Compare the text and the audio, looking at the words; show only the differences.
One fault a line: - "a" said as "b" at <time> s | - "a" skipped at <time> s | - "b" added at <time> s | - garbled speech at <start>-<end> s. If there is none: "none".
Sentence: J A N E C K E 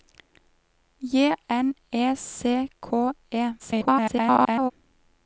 - "A" skipped at 1.4 s
- garbled speech at 3.6-4.7 s